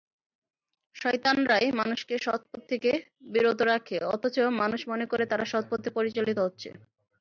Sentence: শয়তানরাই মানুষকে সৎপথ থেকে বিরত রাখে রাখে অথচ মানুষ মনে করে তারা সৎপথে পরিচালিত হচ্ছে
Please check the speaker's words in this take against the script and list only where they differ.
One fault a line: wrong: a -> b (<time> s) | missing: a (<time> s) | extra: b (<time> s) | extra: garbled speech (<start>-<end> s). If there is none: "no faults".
missing: রাখে (4.0 s)